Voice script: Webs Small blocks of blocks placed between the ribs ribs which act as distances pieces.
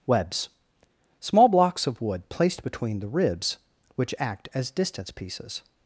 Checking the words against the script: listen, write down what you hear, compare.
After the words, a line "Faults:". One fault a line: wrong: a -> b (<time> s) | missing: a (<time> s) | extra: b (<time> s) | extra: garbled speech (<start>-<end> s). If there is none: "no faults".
Webs Small blocks of wood placed between the ribs which act as distance pieces.
Faults:
wrong: blocks -> wood (2.0 s)
missing: ribs (3.6 s)
wrong: distances -> distance (4.7 s)